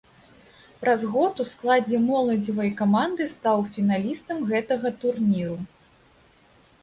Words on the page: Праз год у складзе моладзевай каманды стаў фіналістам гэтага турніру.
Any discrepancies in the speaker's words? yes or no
no